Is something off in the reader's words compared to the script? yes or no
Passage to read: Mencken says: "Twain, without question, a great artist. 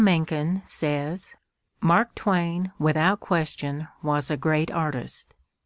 yes